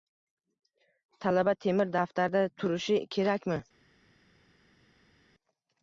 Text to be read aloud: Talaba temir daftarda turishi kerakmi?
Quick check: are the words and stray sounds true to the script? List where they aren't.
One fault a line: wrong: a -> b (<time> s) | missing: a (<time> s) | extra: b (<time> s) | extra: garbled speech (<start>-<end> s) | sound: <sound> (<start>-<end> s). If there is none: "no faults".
no faults